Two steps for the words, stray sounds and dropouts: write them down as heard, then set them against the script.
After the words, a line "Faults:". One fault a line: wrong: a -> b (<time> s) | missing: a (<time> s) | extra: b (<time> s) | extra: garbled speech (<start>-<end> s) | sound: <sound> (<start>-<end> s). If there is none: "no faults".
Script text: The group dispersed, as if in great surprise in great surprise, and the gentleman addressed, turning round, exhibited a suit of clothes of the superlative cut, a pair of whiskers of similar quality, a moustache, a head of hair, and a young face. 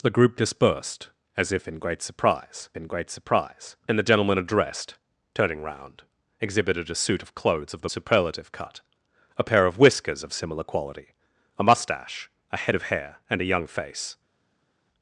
The group dispersed, as if in great surprise in great surprise, and the gentleman addressed, turning round, exhibited a suit of clothes of the superlative cut, a pair of whiskers of similar quality, a moustache, a head of hair, and a young face.
Faults:
no faults